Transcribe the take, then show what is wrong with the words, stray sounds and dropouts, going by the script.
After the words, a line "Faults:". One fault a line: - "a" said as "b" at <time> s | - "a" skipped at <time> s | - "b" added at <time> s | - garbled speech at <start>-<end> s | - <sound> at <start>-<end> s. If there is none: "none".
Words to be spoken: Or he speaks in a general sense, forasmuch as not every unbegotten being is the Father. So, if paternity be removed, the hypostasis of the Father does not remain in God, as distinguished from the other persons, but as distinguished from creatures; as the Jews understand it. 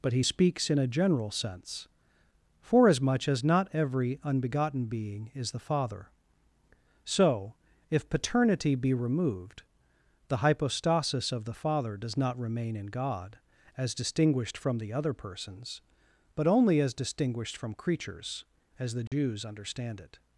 But he speaks in a general sense, forasmuch as not every unbegotten being is the Father. So, if paternity be removed, the hypostasis of the Father does not remain in God, as distinguished from the other persons, but only as distinguished from creatures; as the Jews understand it.
Faults:
- "Or" said as "But" at 0.0 s
- "only" added at 16.5 s
- dropout at 19.1-19.1 s